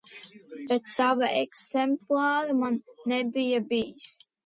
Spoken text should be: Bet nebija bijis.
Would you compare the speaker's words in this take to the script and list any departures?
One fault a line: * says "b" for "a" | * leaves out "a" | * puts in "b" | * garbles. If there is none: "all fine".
* puts in "sava eksemplāra man"